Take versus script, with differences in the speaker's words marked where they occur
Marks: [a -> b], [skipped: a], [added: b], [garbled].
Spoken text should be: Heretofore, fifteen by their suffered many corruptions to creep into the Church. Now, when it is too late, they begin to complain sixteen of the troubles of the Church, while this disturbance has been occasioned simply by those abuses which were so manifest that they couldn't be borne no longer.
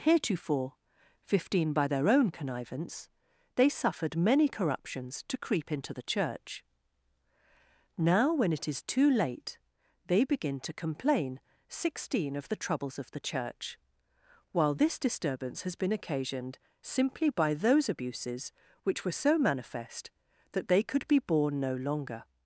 Heretofore, fifteen by their [added: own connivance they] suffered many corruptions to creep into the Church. Now, when it is too late, they begin to complain sixteen of the troubles of the Church, while this disturbance has been occasioned simply by those abuses which were so manifest that they [couldn't -> could] be borne no longer.